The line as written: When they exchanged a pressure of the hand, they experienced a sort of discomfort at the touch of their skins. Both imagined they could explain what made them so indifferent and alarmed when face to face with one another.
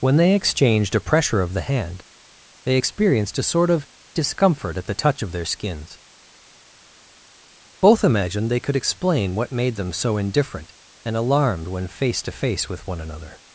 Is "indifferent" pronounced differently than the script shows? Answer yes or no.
no